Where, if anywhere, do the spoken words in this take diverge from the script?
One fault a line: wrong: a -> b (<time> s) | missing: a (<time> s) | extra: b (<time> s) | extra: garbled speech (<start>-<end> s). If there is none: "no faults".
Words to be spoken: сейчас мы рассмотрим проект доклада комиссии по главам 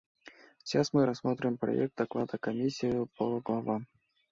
no faults